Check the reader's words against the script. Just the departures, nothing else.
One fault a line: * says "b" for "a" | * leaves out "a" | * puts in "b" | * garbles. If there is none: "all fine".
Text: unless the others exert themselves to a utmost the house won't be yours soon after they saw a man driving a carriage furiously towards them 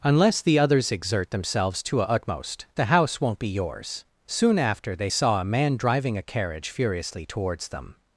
all fine